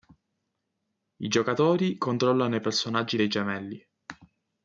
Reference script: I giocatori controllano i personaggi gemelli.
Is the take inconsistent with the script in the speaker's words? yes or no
yes